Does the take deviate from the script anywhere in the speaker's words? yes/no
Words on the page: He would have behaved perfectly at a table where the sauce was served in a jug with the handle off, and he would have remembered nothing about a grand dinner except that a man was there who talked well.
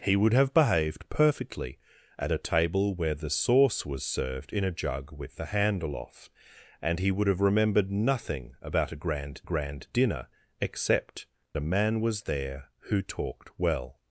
yes